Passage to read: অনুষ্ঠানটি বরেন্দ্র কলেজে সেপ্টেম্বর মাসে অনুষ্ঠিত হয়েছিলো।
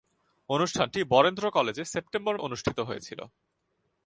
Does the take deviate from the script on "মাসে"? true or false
true